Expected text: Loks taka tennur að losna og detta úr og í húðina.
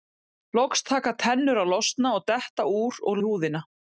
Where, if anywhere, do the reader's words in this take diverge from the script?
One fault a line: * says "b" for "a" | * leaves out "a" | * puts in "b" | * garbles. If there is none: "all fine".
all fine